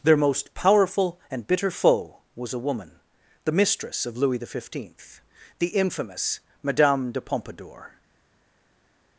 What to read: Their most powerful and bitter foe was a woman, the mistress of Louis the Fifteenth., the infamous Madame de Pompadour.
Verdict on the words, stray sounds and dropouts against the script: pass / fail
pass